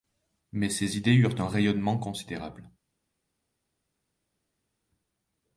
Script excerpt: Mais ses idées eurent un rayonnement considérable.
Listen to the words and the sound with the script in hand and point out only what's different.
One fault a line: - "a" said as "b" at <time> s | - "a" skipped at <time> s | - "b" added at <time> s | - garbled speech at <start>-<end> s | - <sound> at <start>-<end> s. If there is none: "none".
none